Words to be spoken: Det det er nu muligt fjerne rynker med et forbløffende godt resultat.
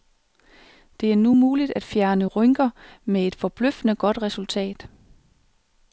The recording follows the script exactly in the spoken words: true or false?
false